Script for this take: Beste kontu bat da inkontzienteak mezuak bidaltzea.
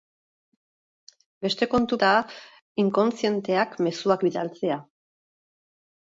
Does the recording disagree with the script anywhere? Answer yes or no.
yes